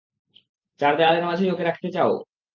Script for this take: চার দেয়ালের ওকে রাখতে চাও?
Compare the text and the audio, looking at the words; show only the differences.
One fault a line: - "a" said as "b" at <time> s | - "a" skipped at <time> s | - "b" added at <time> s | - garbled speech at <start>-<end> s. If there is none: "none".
- "মাঝেই" added at 1.3 s